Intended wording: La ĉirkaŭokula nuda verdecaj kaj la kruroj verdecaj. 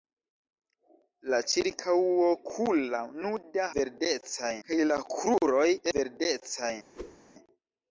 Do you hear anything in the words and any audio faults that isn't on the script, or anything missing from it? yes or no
yes